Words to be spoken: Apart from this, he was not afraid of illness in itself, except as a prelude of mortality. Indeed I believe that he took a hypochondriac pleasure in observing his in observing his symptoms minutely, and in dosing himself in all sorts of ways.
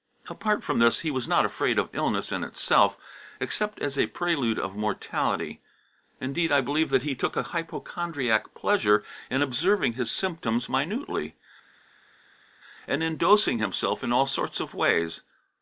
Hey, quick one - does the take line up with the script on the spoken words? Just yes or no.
no